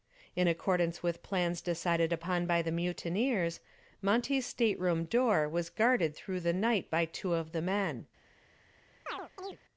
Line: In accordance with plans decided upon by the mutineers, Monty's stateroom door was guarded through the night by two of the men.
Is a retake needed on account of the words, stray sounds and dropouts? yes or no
yes